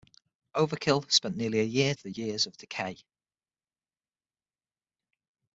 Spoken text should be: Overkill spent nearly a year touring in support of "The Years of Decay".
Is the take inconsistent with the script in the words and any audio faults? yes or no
yes